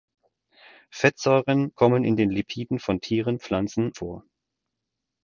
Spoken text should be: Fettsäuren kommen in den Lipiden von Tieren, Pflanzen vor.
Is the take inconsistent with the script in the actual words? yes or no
no